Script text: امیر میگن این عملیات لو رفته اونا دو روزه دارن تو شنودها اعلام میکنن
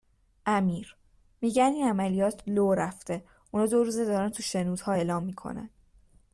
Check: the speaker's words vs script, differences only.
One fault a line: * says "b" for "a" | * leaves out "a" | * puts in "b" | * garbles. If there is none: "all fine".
all fine